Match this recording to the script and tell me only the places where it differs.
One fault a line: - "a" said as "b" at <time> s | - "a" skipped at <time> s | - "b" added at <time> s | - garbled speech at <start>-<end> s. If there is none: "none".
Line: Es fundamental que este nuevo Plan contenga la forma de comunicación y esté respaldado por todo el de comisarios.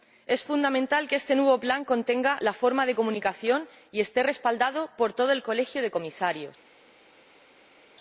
- "colegio" added at 5.4 s